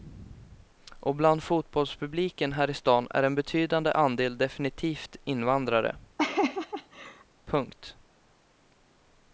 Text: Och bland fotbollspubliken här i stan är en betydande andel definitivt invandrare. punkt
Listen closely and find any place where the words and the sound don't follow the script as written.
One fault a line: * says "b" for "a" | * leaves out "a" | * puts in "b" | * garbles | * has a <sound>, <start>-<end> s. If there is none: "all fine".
* has a laugh, 6.2-7.2 s